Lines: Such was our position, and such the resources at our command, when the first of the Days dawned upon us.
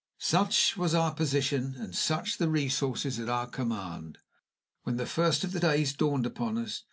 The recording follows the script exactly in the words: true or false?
true